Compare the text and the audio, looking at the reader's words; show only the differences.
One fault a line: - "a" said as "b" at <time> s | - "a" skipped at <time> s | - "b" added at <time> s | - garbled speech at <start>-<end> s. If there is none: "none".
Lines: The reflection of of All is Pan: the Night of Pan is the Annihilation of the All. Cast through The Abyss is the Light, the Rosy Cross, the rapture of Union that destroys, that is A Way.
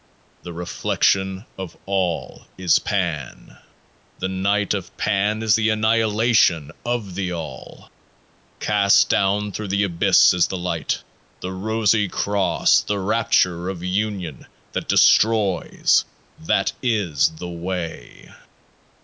- "of" skipped at 1.8 s
- "down" added at 9.1 s
- "A" said as "The" at 17.4 s